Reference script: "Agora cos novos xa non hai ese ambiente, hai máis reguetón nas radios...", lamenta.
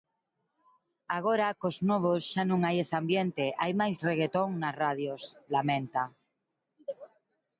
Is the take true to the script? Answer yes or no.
yes